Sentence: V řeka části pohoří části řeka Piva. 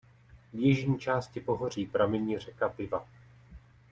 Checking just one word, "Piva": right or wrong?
right